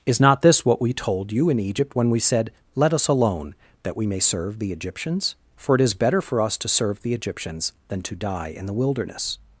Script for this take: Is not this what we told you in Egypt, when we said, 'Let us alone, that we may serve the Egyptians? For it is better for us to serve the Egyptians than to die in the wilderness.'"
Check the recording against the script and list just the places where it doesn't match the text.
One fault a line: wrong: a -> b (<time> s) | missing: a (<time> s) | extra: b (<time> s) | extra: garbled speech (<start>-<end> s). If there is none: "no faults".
no faults